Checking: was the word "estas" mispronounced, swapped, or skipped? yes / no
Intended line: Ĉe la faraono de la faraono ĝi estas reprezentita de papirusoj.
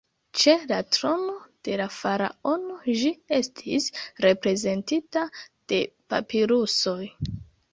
yes